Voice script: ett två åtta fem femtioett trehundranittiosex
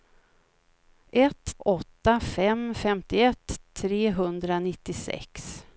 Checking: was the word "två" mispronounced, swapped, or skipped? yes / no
yes